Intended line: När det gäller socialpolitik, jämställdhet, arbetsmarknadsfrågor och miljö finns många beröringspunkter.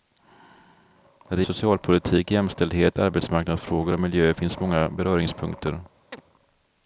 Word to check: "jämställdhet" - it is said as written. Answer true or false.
true